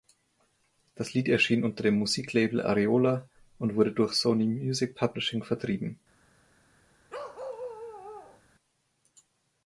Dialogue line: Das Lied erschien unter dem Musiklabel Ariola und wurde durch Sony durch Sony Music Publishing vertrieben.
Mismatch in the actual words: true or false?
true